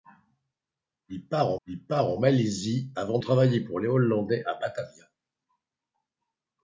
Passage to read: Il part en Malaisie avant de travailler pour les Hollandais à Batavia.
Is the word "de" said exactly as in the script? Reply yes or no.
no